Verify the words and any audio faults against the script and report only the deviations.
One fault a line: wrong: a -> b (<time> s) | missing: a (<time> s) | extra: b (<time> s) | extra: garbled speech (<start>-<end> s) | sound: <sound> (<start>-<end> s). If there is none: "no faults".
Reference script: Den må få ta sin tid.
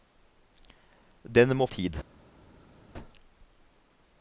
missing: få ta sin (1.7 s)